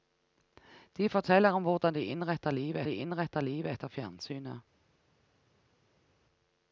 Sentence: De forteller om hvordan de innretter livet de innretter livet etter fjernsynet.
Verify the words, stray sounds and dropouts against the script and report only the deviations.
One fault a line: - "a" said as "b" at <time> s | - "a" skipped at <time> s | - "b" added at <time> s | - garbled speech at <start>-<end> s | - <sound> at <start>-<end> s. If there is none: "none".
none